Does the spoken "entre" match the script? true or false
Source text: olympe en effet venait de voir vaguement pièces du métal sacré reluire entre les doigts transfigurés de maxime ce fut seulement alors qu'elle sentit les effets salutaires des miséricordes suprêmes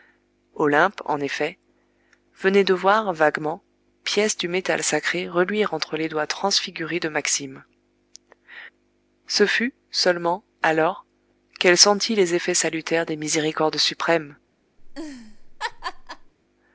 true